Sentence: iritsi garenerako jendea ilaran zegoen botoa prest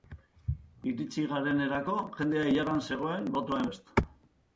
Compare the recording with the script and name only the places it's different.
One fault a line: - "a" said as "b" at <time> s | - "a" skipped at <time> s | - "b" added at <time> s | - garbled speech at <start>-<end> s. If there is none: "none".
none